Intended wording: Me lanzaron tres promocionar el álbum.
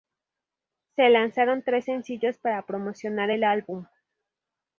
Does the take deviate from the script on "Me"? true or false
true